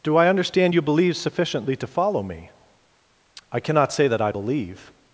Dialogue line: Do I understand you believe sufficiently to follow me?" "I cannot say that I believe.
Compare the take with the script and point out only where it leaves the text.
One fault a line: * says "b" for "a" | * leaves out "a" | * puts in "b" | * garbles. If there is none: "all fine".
all fine